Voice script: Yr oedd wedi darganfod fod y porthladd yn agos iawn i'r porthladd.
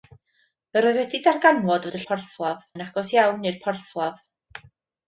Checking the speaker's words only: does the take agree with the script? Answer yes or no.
yes